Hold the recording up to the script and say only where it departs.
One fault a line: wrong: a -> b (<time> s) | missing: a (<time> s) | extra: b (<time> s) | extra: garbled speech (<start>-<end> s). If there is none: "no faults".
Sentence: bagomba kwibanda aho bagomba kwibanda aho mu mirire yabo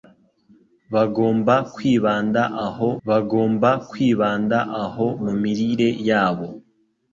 no faults